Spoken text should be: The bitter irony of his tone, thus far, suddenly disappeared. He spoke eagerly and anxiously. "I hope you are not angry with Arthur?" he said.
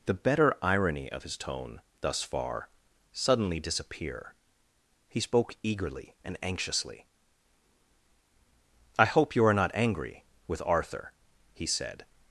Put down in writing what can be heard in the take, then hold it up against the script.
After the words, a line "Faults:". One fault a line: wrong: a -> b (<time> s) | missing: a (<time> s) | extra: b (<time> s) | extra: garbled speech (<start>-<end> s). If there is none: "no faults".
The better irony of his tone, thus far, suddenly disappear. He spoke eagerly and anxiously. "I hope you are not angry with Arthur?" he said.
Faults:
wrong: bitter -> better (0.1 s)
wrong: disappeared -> disappear (3.6 s)